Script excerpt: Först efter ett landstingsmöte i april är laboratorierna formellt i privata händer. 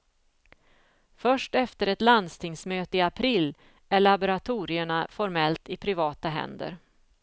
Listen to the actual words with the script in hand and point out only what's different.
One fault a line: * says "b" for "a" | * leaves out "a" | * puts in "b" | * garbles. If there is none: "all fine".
all fine